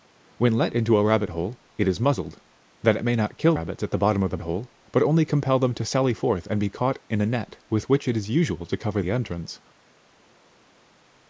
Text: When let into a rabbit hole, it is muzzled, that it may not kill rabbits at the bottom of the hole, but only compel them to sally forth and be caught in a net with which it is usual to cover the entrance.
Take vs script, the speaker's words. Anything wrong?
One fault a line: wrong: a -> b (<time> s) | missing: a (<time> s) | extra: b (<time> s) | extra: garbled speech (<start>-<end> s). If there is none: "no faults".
no faults